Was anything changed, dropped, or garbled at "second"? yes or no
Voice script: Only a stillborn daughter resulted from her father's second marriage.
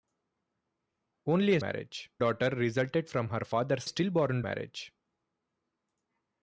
yes